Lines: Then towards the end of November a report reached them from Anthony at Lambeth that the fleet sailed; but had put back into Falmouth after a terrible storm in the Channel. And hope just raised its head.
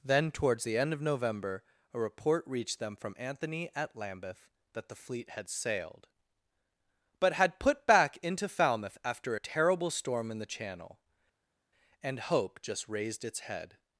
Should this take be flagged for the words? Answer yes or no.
yes